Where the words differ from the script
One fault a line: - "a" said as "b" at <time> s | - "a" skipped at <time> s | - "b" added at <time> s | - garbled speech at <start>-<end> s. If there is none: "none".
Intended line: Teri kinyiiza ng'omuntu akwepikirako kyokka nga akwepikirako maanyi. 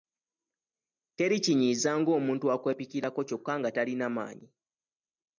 - "akwepikirako" said as "talina" at 3.8 s